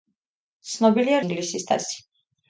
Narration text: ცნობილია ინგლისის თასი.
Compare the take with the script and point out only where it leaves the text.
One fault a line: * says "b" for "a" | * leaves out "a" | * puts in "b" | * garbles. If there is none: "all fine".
all fine